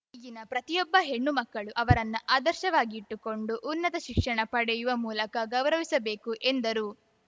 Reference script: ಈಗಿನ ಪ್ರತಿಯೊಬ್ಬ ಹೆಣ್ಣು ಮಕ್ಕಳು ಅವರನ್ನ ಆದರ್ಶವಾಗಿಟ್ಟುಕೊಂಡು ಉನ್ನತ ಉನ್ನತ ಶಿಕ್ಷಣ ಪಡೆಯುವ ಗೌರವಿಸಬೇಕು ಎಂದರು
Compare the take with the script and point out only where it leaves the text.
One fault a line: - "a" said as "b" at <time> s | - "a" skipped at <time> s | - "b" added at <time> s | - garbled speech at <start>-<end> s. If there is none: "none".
- "ಉನ್ನತ" skipped at 4.0 s
- "ಮೂಲಕ" added at 5.1 s